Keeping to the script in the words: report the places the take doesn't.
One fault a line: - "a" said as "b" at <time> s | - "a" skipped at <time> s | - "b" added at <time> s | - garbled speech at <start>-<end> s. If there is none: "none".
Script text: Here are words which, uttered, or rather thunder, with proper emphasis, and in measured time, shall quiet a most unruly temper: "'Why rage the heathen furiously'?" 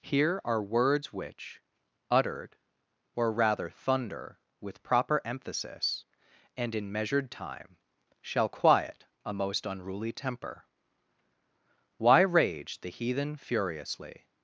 none